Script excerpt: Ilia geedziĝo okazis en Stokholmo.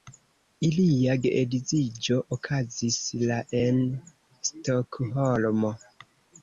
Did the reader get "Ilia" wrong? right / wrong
right